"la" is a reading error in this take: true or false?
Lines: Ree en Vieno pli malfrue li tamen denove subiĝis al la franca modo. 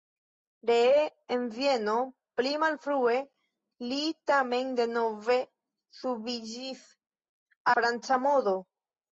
true